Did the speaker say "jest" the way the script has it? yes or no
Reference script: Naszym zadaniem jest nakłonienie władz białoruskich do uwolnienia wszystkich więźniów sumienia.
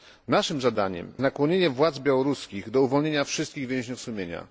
no